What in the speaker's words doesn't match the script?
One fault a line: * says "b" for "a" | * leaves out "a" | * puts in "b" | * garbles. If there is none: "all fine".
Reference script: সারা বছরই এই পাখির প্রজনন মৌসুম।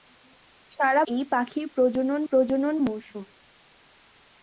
* leaves out "বছরই"
* puts in "প্রজনন"